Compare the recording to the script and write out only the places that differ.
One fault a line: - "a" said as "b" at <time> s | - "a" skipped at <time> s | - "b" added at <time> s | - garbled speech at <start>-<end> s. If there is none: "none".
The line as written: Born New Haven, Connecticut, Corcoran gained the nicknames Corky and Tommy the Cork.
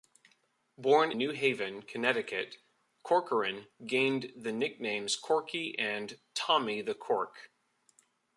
none